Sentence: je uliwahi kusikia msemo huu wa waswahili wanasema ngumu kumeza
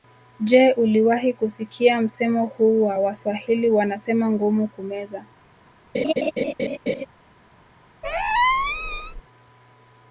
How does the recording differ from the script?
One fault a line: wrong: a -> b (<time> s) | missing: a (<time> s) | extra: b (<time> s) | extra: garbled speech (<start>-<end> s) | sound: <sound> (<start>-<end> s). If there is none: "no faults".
sound: laugh (5.9-7.1 s)
sound: squeak (8.0-9.2 s)